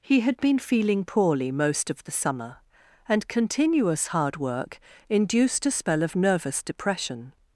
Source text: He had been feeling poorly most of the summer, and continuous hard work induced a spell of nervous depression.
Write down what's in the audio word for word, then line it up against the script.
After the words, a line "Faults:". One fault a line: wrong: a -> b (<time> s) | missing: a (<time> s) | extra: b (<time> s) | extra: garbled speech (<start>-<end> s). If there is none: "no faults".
He had been feeling poorly most of the summer, and continuous hard work induced a spell of nervous depression.
Faults:
no faults